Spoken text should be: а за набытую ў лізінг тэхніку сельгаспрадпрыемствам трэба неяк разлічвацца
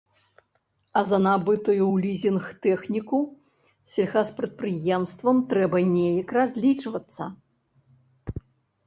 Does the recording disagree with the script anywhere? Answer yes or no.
no